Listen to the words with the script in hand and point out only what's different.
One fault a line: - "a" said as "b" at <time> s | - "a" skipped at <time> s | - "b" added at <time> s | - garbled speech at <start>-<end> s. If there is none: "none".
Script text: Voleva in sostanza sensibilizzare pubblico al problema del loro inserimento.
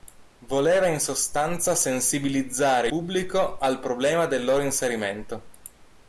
none